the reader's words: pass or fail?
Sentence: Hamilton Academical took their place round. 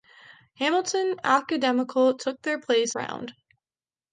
pass